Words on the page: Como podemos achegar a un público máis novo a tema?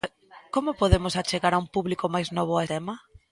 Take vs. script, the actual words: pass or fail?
pass